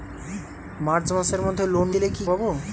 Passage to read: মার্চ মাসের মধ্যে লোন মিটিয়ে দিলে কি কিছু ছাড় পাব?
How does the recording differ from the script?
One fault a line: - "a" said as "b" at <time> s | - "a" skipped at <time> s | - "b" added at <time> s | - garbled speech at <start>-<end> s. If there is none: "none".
- "মিটিয়ে" skipped at 1.9 s
- "কিছু ছাড়" skipped at 2.2 s